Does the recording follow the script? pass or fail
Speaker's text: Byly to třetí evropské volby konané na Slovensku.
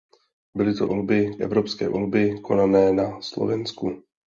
fail